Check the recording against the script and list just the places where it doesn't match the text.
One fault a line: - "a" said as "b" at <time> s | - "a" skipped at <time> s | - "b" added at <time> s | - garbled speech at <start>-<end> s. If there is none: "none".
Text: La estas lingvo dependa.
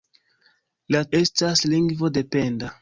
none